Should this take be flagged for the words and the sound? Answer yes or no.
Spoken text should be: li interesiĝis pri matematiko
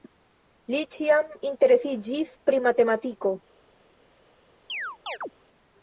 yes